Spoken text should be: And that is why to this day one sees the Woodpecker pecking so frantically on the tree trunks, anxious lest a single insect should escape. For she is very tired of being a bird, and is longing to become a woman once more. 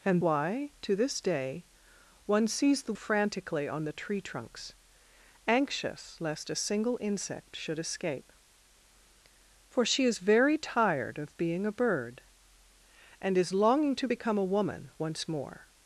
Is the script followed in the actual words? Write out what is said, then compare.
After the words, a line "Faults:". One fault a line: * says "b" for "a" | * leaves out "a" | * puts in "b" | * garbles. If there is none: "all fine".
And why to this day one sees the Frantically on the tree trunks, anxious lest a single insect should escape. For she is very tired of being a bird, and is longing to become a woman once more.
Faults:
* leaves out "that is"
* leaves out "Woodpecker pecking so"